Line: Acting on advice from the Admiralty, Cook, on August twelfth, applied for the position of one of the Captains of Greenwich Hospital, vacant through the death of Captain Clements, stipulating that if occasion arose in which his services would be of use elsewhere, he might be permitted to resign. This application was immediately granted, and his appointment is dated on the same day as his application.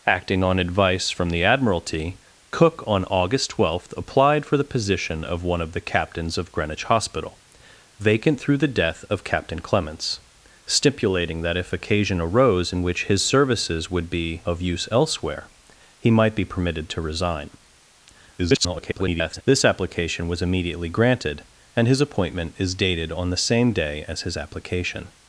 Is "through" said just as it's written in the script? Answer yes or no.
yes